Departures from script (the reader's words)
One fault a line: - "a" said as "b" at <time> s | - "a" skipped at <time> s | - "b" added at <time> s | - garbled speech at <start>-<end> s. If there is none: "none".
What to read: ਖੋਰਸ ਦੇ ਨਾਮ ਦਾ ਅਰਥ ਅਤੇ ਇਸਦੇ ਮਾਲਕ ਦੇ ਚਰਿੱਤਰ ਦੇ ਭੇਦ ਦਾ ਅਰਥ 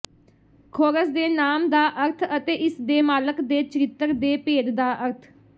none